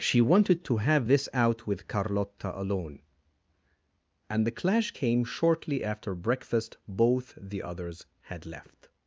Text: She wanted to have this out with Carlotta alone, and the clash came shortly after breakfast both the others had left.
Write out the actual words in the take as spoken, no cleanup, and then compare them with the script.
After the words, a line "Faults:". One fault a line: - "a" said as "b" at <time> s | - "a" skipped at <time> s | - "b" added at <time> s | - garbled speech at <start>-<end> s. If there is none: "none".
She wanted to have this out with Carlotta alone, and the clash came shortly after breakfast both the others had left.
Faults:
none